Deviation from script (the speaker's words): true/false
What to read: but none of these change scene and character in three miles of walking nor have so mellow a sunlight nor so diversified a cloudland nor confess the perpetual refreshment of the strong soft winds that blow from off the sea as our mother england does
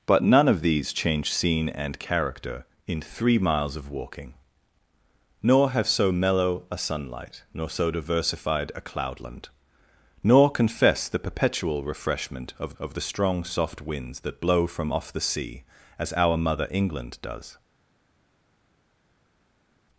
true